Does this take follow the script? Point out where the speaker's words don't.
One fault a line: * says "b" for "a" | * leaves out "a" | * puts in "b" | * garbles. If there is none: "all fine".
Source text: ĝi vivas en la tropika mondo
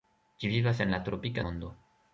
all fine